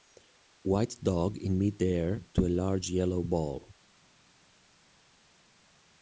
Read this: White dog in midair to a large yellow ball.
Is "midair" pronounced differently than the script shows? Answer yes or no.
no